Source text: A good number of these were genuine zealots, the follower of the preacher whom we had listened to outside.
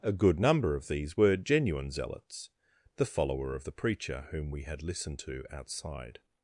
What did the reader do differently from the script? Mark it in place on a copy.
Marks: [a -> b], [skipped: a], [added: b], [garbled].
A good number of these were genuine zealots, the follower of the preacher whom we had listened to outside.